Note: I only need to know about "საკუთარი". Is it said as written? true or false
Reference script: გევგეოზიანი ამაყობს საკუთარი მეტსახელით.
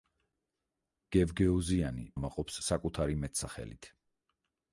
true